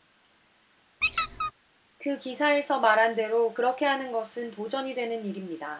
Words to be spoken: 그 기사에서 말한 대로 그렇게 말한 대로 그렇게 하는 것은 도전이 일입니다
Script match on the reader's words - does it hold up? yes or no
no